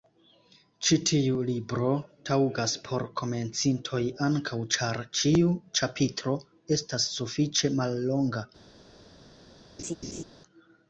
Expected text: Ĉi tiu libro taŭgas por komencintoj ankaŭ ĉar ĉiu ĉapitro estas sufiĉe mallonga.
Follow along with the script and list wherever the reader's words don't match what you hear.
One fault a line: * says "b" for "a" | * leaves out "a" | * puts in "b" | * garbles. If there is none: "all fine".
all fine